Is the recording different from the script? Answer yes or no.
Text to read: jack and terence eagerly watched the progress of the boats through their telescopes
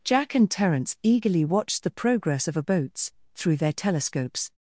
yes